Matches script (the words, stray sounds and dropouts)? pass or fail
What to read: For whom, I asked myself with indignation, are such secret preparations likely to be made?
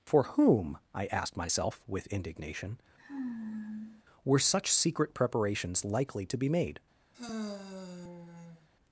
fail